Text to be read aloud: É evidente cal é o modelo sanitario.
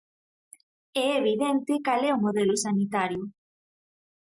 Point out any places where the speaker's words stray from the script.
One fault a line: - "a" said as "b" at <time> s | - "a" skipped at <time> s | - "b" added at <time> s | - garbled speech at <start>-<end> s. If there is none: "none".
none